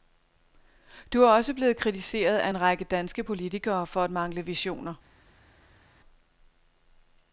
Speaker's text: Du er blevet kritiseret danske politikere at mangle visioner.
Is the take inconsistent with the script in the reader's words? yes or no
yes